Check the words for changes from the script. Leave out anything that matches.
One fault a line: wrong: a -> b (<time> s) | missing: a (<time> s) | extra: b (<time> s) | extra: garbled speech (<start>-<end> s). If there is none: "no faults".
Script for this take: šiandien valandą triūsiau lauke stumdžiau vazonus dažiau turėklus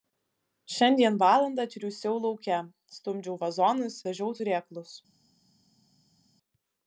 no faults